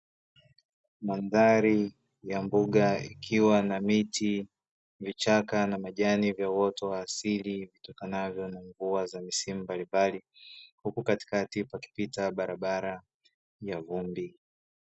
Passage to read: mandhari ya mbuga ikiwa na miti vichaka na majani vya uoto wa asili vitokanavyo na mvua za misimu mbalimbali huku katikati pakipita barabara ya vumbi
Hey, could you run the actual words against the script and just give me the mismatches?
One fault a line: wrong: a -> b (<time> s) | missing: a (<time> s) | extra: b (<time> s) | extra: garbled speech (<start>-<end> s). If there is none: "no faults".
no faults